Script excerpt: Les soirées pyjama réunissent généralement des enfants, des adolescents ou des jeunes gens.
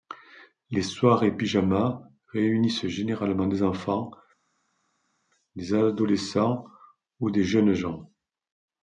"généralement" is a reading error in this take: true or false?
false